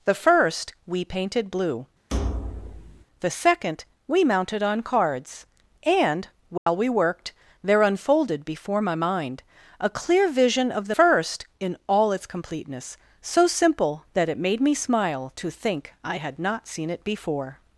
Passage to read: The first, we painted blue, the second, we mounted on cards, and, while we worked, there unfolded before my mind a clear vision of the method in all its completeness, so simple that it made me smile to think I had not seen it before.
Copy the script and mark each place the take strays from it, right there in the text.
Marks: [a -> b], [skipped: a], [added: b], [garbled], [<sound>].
The first, we painted blue, [thud] the second, we mounted on cards, and, while [dropout] we worked, there unfolded before my mind a clear vision of the [method -> first] in all its completeness, so simple that it made me smile to think I had not seen it before.